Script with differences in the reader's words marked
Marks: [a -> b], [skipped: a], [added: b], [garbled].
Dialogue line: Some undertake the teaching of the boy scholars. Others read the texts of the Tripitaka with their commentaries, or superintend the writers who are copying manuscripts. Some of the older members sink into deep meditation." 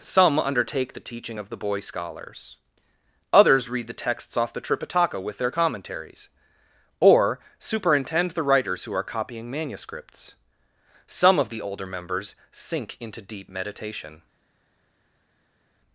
Some undertake the teaching of the boy scholars. Others read the texts [of -> off] the Tripitaka with their commentaries, or superintend the writers who are copying manuscripts. Some of the older members sink into deep meditation."